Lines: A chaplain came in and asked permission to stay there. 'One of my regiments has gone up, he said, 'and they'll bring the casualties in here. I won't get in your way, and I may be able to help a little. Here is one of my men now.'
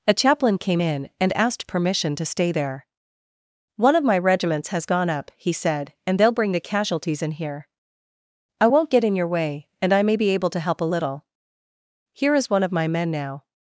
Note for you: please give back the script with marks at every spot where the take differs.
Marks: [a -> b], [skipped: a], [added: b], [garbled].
A chaplain came in and asked permission to stay there. 'One of my regiments has gone up, he said, 'and they'll bring the casualties in here. I won't get in your way, and I may be able to help a little. Here is one of my men now.'